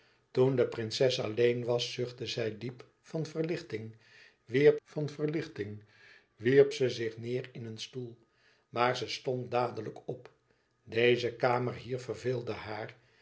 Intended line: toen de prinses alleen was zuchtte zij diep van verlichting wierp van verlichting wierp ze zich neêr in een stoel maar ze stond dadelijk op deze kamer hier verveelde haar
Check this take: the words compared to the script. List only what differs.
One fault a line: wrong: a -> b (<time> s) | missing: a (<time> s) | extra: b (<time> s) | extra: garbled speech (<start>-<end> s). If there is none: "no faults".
no faults